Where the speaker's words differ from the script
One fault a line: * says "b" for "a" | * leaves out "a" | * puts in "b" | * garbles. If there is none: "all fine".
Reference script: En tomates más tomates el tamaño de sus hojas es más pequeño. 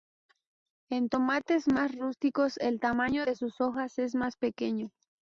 * says "rústicos" for "tomates"